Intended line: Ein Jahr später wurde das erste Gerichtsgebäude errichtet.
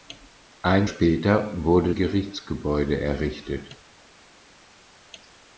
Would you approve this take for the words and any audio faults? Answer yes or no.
no